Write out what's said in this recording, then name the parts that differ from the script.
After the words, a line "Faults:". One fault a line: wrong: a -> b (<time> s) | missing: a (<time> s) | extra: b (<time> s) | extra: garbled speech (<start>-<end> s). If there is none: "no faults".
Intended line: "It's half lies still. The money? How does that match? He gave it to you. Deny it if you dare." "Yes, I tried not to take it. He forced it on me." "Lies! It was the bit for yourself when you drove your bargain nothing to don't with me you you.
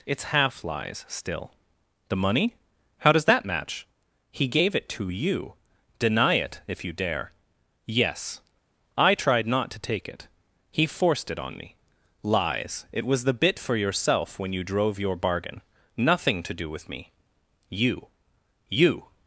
"It's half lies still. The money? How does that match? He gave it to you. Deny it if you dare." "Yes, I tried not to take it. He forced it on me." "Lies! It was the bit for yourself when you drove your bargain nothing to do with me you you.
Faults:
wrong: don't -> do (16.5 s)